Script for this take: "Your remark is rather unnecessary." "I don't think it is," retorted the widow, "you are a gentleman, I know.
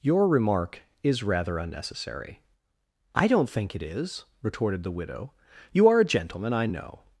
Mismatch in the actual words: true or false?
false